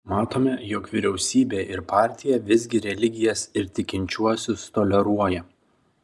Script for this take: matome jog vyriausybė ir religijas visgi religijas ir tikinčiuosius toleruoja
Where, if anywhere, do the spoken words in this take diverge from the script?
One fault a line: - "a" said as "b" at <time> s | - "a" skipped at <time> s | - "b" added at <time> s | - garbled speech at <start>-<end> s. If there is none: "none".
- "religijas" said as "partija" at 1.9 s